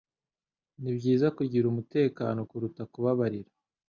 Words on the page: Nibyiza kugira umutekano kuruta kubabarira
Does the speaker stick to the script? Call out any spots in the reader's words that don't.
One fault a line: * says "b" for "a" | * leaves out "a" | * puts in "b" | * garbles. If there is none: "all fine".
all fine